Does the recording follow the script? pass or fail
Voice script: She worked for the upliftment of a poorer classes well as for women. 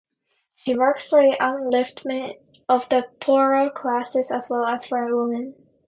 fail